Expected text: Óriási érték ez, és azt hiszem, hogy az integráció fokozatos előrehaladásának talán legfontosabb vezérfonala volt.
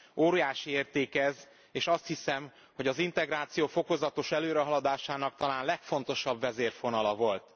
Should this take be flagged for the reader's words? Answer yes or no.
no